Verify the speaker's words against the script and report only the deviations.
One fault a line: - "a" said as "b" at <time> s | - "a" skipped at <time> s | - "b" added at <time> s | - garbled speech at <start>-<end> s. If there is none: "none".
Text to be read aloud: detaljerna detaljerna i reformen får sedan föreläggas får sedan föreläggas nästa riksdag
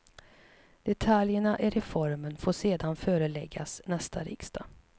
- "detaljerna" skipped at 1.6 s
- "får sedan föreläggas" skipped at 3.8 s